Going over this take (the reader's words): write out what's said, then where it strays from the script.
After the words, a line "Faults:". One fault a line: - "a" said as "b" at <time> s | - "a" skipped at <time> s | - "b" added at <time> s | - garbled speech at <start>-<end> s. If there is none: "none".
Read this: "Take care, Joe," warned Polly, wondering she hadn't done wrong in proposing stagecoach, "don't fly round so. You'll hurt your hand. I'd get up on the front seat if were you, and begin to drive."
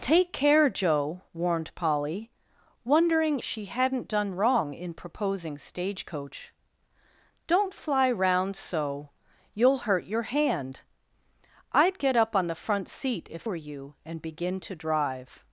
"Take care, Joe," warned Polly, wondering she hadn't done wrong in proposing stagecoach, "don't fly round so. You'll hurt your hand. I'd get up on the front seat if were you, and begin to drive."
Faults:
none